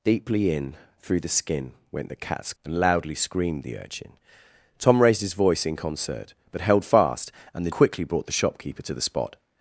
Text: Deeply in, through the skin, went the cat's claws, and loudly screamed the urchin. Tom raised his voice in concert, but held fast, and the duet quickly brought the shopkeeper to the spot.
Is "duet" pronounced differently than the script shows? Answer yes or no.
yes